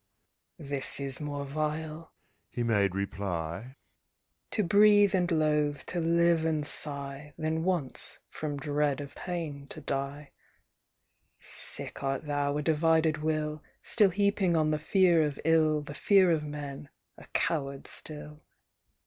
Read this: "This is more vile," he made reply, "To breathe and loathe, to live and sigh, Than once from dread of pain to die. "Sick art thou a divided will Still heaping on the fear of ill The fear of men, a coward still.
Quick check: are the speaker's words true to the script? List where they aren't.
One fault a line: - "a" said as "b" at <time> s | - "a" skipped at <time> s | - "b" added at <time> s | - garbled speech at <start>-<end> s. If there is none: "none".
none